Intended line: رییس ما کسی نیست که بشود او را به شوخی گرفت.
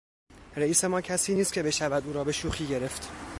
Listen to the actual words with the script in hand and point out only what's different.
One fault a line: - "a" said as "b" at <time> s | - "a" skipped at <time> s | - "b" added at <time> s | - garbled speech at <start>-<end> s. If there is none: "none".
none